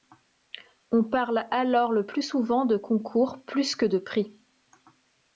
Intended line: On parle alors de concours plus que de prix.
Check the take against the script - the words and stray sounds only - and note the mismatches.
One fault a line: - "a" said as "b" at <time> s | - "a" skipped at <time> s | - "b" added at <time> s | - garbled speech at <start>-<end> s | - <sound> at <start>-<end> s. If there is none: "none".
- "le plus souvent" added at 1.9 s